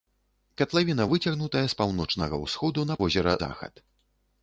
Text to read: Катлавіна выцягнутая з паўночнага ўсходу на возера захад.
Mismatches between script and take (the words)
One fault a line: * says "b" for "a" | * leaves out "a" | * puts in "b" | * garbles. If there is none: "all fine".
all fine